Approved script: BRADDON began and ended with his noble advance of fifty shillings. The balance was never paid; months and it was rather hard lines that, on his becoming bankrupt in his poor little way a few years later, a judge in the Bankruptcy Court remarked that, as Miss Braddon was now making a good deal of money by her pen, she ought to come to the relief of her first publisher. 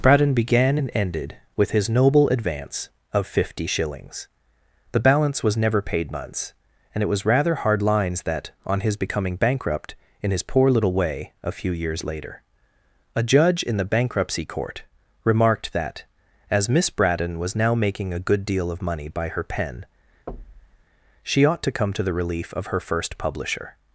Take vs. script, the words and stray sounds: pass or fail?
fail